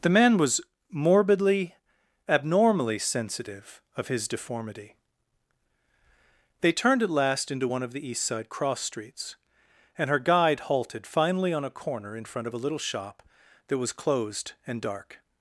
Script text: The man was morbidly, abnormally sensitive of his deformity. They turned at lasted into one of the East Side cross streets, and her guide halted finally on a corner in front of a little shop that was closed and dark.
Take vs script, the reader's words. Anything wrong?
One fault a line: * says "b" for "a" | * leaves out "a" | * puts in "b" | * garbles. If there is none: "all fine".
* says "last" for "lasted"